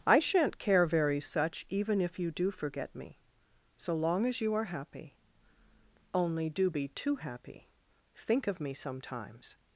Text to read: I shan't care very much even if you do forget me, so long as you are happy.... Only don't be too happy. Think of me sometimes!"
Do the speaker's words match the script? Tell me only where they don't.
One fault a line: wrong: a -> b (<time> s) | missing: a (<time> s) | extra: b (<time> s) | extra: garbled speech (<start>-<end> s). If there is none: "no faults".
wrong: much -> such (1.2 s)
wrong: don't -> do (6.5 s)